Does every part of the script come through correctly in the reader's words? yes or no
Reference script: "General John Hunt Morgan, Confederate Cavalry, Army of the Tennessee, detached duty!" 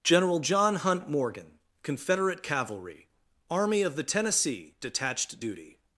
yes